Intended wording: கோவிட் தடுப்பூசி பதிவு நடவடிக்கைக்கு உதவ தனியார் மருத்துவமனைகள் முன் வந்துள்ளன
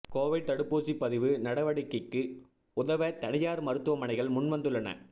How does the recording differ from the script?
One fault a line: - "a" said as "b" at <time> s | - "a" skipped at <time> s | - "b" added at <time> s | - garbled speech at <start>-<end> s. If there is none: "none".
none